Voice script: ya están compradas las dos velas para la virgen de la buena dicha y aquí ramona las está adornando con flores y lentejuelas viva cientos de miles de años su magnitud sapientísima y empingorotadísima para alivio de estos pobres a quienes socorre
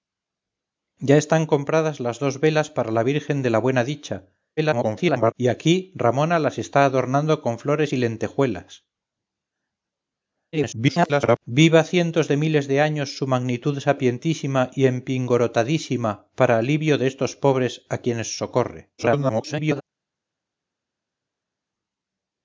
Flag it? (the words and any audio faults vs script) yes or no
yes